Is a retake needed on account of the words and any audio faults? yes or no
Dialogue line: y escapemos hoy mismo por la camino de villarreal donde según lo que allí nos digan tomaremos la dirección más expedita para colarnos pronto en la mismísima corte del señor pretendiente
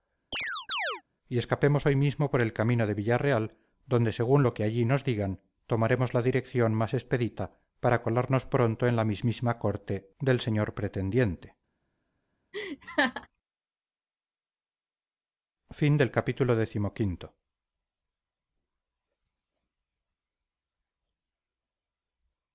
yes